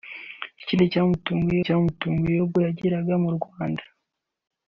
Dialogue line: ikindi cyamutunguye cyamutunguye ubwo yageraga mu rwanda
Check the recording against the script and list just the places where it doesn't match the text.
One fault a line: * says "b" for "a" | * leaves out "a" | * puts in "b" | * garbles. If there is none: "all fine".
all fine